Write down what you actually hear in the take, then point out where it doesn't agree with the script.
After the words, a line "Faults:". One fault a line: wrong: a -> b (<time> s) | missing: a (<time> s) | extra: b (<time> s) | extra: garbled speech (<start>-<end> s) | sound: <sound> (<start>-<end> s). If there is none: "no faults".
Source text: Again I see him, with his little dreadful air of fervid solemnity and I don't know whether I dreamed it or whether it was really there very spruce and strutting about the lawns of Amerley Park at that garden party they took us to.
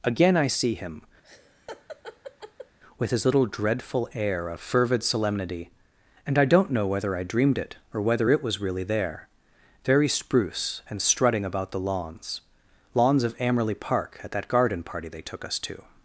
Again I see him, with his little dreadful air of fervid solemnity and I don't know whether I dreamed it or whether it was really there very spruce and strutting about the lawns lawns of Amerley Park at that garden party they took us to.
Faults:
sound: laugh (1.2-2.8 s)
extra: lawns (12.9 s)